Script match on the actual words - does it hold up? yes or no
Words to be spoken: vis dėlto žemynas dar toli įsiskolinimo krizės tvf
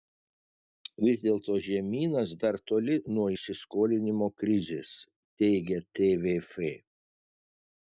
no